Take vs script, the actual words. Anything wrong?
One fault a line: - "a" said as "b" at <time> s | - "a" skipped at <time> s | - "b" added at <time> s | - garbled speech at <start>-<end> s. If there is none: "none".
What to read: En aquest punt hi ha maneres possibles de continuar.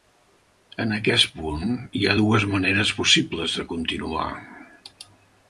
- "dues" added at 2.2 s